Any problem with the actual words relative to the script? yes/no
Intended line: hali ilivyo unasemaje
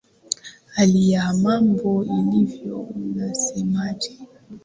yes